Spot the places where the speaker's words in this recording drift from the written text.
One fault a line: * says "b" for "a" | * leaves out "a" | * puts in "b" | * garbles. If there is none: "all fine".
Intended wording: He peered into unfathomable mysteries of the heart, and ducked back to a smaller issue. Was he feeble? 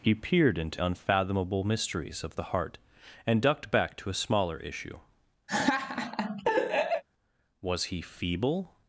all fine